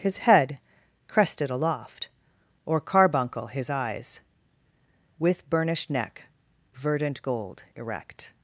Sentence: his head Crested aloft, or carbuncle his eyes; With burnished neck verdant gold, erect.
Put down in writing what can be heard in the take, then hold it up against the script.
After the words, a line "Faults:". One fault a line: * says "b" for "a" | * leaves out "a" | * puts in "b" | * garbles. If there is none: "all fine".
his head Crested aloft, or carbuncle his eyes; With burnished neck verdant gold, erect.
Faults:
all fine